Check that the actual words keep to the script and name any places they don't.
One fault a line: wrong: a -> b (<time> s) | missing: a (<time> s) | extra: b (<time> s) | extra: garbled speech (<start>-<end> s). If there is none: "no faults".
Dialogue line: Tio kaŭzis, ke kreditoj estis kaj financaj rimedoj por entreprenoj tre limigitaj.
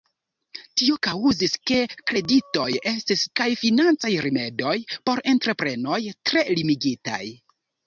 no faults